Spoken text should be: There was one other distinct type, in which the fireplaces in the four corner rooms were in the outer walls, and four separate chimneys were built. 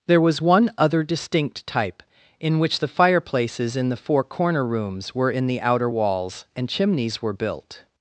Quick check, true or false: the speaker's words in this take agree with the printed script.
false